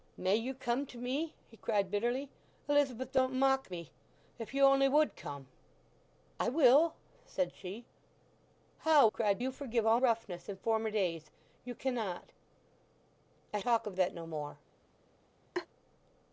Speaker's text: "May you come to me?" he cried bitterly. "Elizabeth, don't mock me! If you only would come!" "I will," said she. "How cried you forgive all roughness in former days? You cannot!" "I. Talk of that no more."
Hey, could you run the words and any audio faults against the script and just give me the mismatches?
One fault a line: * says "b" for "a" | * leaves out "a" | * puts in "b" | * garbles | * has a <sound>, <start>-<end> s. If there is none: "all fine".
* has a laugh, 15.5-15.7 s